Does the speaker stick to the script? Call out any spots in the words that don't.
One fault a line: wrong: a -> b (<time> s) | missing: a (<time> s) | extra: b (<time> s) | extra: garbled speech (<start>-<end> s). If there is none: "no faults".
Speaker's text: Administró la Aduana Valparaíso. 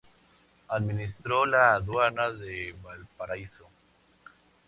extra: de (2.3 s)